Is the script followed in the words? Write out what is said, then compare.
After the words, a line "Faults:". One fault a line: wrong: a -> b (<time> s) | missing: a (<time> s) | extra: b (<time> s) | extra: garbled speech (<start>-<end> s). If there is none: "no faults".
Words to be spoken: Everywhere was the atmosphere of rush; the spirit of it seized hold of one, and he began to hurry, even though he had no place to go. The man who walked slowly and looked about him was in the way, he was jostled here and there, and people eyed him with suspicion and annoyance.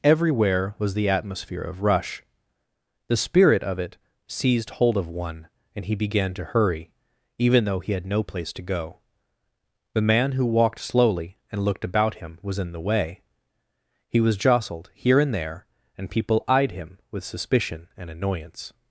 Everywhere was the atmosphere of rush; the spirit of it seized hold of one, and he began to hurry, even though he had no place to go. The man who walked slowly and looked about him was in the way, he was jostled here and there, and people eyed him with suspicion and annoyance.
Faults:
no faults